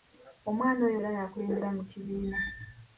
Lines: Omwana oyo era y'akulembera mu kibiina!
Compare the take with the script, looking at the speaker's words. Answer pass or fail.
pass